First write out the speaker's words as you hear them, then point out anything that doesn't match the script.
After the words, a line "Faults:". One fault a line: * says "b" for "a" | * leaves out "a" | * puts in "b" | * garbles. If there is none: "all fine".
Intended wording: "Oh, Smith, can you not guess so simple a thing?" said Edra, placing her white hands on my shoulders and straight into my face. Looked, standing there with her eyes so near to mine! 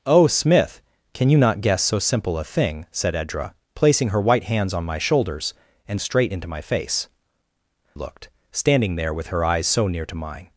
"Oh, Smith, can you not guess so simple a thing?" said Edra, placing her white hands on my shoulders and straight into my face. Looked, standing there with her eyes so near to mine!
Faults:
all fine